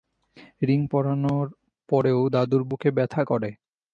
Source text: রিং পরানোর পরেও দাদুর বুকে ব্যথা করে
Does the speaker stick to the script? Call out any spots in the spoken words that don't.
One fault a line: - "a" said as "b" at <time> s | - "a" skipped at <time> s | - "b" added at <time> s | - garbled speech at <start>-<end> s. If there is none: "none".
none